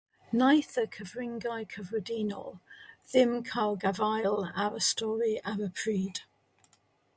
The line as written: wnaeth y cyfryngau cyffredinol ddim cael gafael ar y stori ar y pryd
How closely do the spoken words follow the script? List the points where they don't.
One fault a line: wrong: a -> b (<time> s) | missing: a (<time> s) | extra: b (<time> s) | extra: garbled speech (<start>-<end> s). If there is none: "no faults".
no faults